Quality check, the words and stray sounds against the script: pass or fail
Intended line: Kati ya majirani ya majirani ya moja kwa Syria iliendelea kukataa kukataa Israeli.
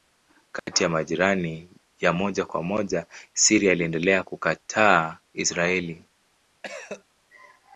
fail